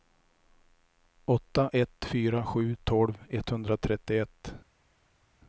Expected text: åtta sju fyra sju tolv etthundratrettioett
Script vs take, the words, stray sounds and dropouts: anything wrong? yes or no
yes